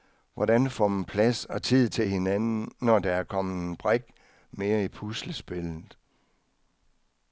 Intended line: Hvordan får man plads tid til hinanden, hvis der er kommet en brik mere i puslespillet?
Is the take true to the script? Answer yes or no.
no